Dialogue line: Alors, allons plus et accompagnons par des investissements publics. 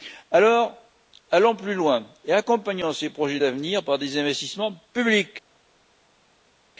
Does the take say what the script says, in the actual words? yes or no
no